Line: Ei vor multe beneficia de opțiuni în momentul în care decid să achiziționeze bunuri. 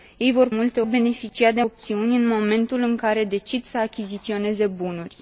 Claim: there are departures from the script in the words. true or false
false